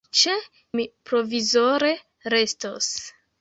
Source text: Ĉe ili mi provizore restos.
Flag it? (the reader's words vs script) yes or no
yes